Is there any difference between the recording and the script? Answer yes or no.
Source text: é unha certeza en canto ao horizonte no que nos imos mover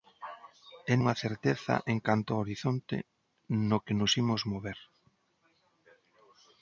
no